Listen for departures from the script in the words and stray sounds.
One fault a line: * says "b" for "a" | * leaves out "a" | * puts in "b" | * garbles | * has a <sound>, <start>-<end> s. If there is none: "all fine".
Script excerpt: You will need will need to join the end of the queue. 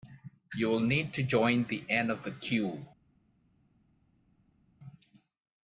* leaves out "will need"